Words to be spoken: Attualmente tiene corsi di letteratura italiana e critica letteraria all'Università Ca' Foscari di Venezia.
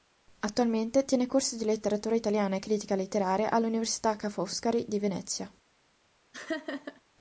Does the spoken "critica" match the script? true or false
true